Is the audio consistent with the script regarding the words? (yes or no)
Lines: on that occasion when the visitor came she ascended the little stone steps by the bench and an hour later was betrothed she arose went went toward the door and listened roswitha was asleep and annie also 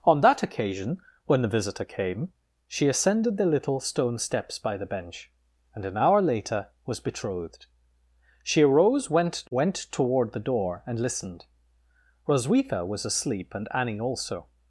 yes